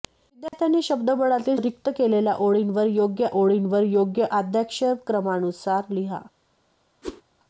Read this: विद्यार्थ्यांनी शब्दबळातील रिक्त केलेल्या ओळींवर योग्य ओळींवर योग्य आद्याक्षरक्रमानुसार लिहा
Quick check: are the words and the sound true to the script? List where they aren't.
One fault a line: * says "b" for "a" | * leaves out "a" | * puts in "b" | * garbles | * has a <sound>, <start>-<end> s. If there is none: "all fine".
* has a dropout, 0.5-0.5 s
* has a whoosh, 7.0-7.2 s